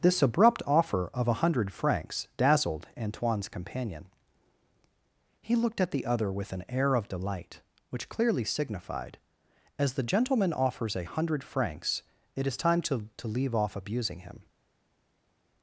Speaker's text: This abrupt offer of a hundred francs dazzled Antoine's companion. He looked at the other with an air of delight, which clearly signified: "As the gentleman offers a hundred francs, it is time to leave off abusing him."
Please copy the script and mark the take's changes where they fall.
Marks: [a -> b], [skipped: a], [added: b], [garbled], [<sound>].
This abrupt offer of a hundred francs dazzled Antoine's companion. He looked at the other with an air of delight, which clearly signified: "As the gentleman offers a hundred francs, it is time to [added: to] leave off abusing him."